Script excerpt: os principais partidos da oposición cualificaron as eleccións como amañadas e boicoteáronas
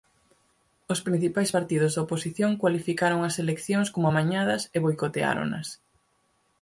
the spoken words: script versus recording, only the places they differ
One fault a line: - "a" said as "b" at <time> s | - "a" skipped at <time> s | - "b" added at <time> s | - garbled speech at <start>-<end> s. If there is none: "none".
none